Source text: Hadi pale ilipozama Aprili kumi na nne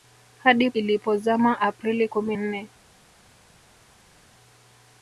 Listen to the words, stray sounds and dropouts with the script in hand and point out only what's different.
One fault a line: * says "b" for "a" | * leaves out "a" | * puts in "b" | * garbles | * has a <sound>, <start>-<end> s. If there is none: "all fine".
* leaves out "pale"
* leaves out "na"